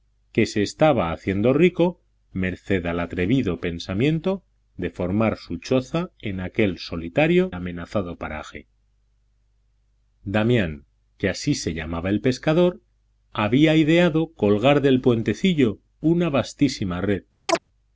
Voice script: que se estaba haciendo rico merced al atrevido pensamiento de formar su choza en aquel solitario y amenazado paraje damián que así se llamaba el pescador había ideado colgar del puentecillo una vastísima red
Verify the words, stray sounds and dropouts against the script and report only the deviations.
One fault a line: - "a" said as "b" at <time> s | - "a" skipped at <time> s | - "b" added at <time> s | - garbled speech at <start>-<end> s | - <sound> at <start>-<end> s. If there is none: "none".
- "y" skipped at 7.5 s
- chirp at 17.5-17.6 s